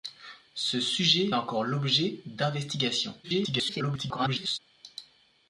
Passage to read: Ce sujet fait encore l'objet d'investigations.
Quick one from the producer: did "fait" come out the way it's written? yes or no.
no